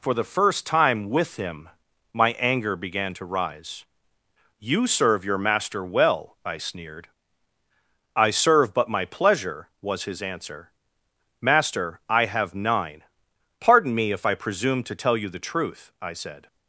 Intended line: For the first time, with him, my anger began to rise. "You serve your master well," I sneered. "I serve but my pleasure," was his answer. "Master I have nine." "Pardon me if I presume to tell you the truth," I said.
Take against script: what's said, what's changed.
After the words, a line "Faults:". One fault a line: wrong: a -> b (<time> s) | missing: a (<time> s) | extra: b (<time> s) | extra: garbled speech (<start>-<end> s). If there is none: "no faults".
For the first time, with him, my anger began to rise. "You serve your master well," I sneered. "I serve but my pleasure," was his answer. "Master I have nine." "Pardon me if I presume to tell you the truth," I said.
Faults:
no faults